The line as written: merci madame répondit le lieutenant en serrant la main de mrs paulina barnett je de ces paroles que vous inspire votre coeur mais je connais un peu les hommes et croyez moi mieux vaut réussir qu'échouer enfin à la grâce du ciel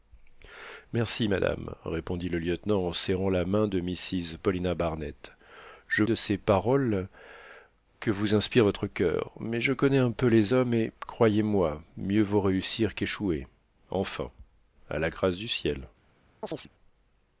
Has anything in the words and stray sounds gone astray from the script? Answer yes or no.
yes